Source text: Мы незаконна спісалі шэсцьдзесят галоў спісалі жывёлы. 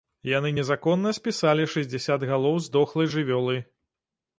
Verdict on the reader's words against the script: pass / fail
fail